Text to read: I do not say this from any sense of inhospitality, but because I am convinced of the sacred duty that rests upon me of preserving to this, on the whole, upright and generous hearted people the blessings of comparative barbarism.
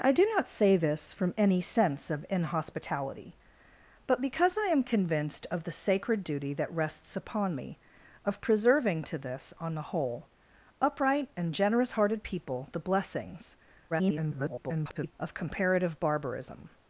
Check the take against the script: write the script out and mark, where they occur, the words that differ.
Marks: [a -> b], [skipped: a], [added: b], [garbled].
I do not say this from any sense of inhospitality, but because I am convinced of the sacred duty that rests upon me of preserving to this, on the whole, upright and generous hearted people the blessings [garbled] of comparative barbarism.